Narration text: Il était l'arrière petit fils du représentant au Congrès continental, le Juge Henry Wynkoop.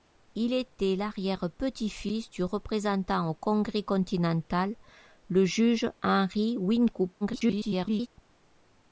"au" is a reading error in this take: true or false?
false